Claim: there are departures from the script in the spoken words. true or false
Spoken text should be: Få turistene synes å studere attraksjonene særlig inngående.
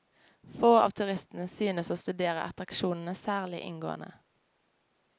true